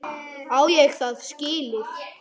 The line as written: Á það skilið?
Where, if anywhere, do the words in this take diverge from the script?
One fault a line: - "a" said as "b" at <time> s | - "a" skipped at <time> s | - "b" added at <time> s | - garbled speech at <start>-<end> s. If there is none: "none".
- "ég" added at 0.8 s